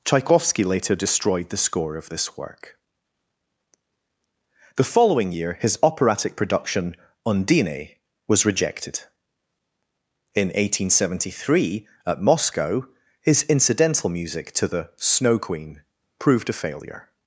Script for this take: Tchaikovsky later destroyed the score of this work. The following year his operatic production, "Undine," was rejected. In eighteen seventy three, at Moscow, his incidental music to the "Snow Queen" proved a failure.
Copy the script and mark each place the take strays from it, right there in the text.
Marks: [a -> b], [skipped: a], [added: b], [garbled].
Tchaikovsky later destroyed the score of this work. The following year his operatic production, "Undine," was rejected. In eighteen seventy three, at Moscow, his incidental music to the "Snow Queen" proved a failure.